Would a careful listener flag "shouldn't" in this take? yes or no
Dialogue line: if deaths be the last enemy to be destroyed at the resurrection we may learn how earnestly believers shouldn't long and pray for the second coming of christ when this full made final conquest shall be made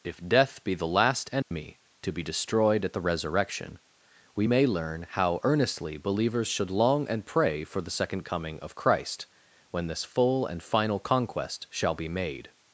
yes